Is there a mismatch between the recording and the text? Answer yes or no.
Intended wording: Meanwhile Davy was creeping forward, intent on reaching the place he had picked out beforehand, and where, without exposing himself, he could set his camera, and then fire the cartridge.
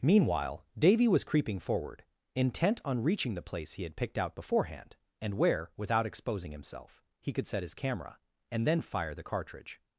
no